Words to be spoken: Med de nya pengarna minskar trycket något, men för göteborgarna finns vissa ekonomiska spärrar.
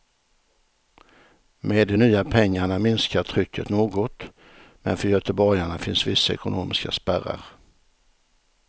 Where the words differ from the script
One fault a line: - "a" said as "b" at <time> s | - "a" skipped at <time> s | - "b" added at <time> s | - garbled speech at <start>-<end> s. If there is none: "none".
none